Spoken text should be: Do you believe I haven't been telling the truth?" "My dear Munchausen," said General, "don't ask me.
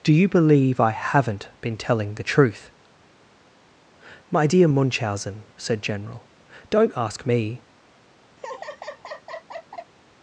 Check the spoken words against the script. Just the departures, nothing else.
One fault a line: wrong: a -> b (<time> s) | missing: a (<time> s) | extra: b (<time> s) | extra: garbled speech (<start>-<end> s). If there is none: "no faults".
no faults